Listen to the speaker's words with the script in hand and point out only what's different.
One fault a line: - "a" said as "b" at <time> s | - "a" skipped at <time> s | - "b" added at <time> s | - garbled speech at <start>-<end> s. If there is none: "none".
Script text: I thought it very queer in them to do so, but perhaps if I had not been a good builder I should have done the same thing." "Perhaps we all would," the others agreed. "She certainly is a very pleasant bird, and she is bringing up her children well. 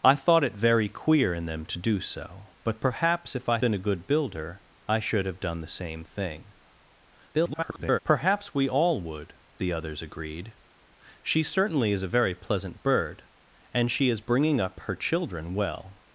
- "had not" skipped at 3.6 s
- garbled speech at 7.3-8.0 s